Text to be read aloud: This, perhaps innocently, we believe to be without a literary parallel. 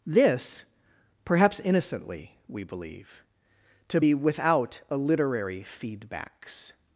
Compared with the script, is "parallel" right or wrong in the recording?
wrong